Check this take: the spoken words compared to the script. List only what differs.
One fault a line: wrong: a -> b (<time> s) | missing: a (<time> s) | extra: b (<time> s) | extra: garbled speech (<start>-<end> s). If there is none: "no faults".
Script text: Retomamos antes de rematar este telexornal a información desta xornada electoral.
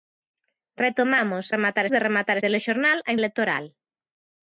wrong: antes -> rematar (1.6 s)
missing: este (2.4 s)
missing: información desta xornada (3.1 s)